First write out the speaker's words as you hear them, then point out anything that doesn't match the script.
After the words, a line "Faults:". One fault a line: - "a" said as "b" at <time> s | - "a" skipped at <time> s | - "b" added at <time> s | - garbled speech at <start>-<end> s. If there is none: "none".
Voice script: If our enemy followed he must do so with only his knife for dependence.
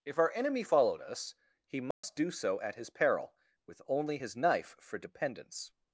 If our enemy followed us, he must do so at his peril, with only his knife for dependence.
Faults:
- "us" added at 1.0 s
- "at his peril" added at 2.6 s